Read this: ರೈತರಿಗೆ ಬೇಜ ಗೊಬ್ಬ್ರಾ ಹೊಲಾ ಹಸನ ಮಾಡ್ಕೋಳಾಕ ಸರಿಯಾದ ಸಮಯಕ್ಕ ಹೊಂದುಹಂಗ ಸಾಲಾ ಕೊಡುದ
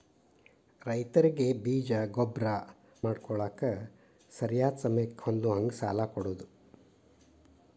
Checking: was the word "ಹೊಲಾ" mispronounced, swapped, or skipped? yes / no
yes